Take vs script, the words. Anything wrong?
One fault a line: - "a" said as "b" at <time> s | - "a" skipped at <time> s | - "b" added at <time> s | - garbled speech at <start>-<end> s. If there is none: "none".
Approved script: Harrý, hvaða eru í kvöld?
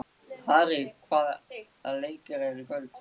- "leikir" added at 2.0 s